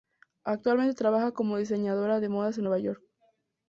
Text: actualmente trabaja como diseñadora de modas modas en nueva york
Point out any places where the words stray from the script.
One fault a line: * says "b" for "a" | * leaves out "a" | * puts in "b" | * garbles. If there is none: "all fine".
* leaves out "modas"